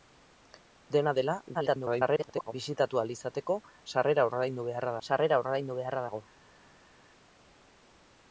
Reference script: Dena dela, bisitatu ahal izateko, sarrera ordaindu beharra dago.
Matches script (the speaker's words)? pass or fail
fail